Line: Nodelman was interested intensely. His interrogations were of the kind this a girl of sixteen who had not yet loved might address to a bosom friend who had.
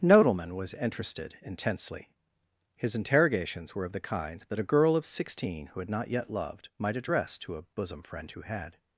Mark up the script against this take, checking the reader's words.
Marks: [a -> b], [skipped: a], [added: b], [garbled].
Nodelman was interested intensely. His interrogations were of the kind [this -> that] a girl of sixteen who had not yet loved might address to a bosom friend who had.